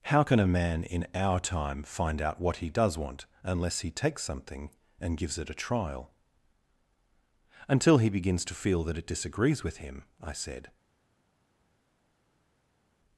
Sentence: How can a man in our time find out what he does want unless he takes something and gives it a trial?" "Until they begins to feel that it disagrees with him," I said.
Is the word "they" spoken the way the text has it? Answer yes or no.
no